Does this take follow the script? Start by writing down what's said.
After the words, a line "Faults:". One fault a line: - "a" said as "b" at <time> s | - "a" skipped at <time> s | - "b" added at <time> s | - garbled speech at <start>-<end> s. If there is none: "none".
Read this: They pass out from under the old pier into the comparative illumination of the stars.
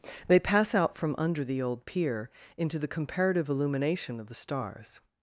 They pass out from under the old pier into the comparative illumination of the stars.
Faults:
none